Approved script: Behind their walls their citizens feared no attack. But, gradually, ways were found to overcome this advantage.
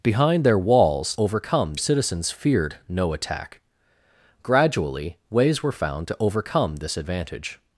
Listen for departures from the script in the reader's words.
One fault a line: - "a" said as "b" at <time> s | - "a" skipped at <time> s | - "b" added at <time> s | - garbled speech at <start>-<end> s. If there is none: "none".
- "their" said as "overcome" at 1.2 s
- "But" skipped at 3.6 s